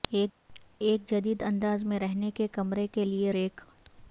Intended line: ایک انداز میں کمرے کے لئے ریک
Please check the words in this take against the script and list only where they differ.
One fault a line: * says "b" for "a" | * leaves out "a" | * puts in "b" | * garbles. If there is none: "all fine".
* puts in "جدید"
* puts in "رہنے کے"